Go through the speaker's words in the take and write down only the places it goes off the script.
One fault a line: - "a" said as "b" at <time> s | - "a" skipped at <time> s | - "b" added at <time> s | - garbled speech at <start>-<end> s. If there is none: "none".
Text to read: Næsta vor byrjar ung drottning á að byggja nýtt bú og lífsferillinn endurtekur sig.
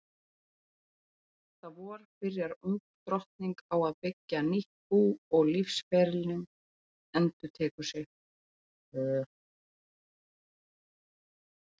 none